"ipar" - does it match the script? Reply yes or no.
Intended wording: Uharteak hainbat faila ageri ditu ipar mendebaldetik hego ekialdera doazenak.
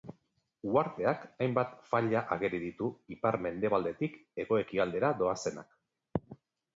yes